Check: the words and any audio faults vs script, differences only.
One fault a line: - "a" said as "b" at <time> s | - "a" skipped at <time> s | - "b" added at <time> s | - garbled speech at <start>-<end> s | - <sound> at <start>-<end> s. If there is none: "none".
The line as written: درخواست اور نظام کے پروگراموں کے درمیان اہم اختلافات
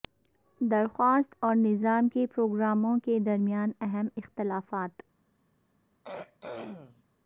- throat clearing at 6.0-7.0 s